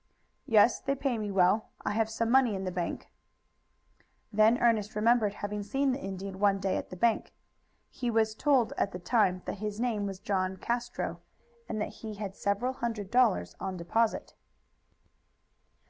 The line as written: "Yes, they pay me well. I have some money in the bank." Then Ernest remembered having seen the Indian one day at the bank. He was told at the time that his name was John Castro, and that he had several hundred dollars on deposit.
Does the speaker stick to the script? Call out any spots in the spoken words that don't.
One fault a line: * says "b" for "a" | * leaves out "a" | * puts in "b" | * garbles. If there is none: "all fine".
all fine